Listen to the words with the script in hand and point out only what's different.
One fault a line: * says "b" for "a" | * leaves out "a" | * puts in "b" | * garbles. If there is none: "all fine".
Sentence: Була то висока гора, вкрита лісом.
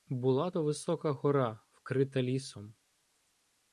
all fine